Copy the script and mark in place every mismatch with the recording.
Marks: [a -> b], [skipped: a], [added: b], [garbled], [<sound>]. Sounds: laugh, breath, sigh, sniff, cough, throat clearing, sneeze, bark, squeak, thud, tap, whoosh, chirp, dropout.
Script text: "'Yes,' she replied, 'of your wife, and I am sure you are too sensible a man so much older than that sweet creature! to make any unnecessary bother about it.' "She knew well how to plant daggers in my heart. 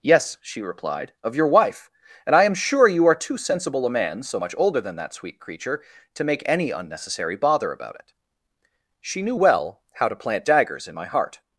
"'Yes,' she replied, 'of your wife, and I am sure you are too sensible a man so much older than that sweet creature! to make any unnecessary bother about it.' "She knew well how to plant daggers in my heart.